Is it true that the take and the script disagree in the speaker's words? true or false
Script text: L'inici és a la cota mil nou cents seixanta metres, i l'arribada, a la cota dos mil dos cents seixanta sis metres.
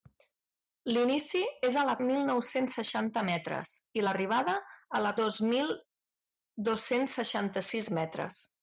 true